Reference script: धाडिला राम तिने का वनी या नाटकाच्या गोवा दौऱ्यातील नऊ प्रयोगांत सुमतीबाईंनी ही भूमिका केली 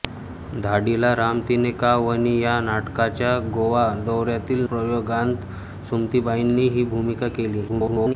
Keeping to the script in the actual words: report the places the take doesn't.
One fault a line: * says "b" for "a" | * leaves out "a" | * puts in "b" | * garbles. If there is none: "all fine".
* leaves out "नऊ"
* garbles